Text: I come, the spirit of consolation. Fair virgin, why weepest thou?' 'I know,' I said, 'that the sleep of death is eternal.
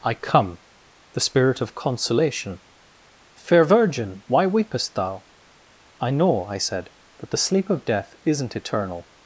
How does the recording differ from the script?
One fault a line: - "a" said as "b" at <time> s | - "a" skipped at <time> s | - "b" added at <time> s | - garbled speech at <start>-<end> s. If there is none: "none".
- "is" said as "isn't" at 8.2 s